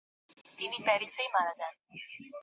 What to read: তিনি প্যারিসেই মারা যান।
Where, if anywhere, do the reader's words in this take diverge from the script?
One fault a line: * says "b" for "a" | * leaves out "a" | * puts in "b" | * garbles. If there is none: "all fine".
all fine